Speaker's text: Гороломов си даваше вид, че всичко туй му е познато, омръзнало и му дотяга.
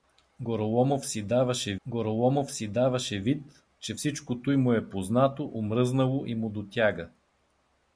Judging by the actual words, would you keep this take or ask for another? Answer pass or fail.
fail